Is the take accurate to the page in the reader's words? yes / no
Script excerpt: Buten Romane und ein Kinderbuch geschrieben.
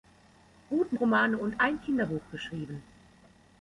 yes